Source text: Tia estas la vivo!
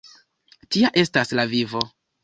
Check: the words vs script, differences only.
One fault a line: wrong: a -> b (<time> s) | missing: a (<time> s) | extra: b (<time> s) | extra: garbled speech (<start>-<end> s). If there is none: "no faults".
no faults